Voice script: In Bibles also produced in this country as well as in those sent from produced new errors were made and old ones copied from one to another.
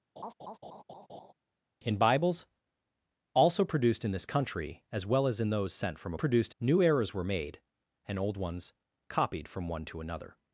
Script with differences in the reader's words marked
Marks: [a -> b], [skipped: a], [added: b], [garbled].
In Bibles also produced in this country as well as in those sent from produced new errors were made and old ones copied from one to another.